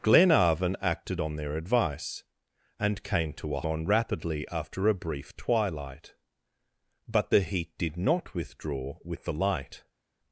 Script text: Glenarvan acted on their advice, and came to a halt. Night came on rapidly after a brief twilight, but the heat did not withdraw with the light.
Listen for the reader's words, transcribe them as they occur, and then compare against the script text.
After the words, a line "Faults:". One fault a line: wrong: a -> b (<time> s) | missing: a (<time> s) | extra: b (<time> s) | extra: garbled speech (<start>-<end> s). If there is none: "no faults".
Glenarvan acted on their advice, and came to a on rapidly after a brief twilight, but the heat did not withdraw with the light.
Faults:
missing: halt Night came (3.6 s)